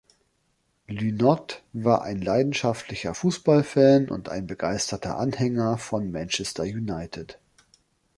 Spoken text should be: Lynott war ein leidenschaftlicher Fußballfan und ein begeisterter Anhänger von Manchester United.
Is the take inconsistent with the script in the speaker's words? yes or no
no